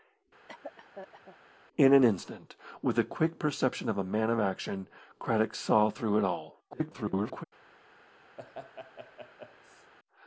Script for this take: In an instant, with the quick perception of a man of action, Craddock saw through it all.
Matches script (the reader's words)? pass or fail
fail